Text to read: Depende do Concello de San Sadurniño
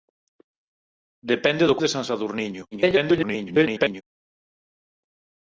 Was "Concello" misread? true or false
true